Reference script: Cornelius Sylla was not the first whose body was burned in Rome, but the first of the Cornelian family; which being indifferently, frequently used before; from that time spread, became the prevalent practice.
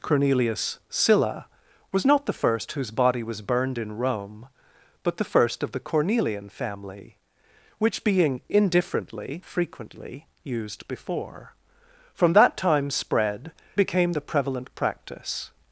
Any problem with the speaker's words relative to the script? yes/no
no